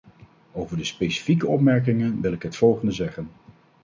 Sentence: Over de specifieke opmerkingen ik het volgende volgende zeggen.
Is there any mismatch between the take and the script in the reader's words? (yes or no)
yes